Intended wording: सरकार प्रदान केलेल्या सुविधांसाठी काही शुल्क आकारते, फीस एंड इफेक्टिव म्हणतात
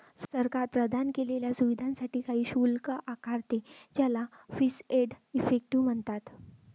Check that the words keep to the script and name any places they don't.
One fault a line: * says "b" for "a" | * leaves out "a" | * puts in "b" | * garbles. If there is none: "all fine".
* puts in "ज्याला"